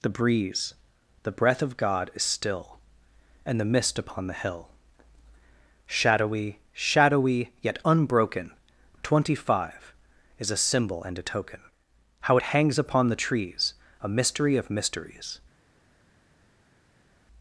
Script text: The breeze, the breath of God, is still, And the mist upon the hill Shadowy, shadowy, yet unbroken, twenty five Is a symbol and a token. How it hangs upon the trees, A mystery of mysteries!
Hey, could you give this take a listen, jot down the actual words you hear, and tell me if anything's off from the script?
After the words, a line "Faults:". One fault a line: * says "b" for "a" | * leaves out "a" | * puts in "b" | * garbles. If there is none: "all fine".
The breeze, the breath of God, is still, And the mist upon the hill Shadowy, shadowy, yet unbroken, twenty five Is a symbol and a token. How it hangs upon the trees, A mystery of mysteries!
Faults:
all fine